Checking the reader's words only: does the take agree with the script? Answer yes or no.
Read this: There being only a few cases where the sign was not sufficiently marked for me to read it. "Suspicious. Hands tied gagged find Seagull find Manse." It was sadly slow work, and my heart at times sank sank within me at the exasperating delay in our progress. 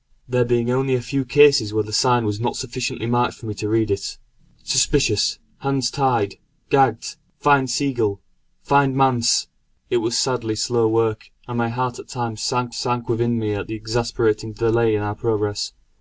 yes